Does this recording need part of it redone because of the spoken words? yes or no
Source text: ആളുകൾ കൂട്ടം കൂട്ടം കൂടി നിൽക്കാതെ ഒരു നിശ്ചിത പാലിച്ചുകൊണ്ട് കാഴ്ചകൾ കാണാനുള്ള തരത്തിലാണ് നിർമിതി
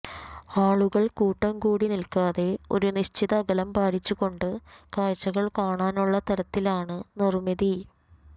yes